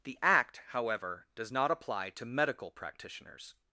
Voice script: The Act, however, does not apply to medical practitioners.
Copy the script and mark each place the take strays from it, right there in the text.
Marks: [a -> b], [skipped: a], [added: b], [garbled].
The Act, however, does not apply to medical practitioners.